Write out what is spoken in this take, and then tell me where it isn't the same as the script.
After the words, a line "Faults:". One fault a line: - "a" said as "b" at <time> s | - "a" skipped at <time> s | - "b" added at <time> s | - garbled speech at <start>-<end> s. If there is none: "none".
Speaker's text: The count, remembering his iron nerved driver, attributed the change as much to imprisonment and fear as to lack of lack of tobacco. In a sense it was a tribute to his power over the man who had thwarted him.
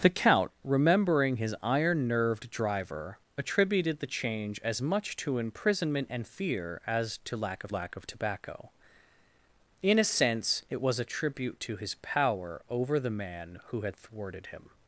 The count, remembering his iron nerved driver, attributed the change as much to imprisonment and fear as to lack of lack of tobacco. In a sense it was a tribute to his power over the man who had thwarted him.
Faults:
none